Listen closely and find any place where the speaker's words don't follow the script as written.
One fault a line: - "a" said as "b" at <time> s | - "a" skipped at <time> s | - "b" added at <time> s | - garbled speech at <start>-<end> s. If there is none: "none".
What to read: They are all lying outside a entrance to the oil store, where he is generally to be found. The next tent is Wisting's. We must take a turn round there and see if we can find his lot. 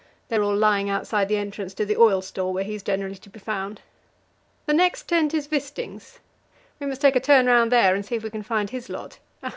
- "a" said as "the" at 1.3 s